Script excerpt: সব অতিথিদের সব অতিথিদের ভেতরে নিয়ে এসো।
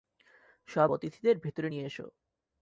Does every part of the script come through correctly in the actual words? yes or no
no